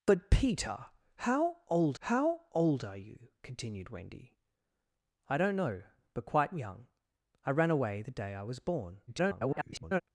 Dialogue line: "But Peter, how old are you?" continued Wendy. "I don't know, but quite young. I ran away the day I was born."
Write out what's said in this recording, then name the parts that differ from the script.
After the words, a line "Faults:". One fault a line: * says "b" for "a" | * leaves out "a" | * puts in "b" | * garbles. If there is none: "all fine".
"But Peter, how old how old are you?" continued Wendy. "I don't know, but quite young. I ran away the day I was born." [garbled]
Faults:
* puts in "how old"
* garbles